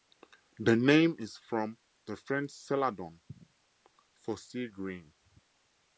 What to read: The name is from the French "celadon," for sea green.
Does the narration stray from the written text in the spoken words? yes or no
no